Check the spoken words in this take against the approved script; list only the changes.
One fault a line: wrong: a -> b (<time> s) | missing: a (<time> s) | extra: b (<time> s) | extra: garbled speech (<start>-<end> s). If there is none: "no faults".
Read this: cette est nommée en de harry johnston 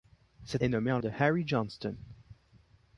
no faults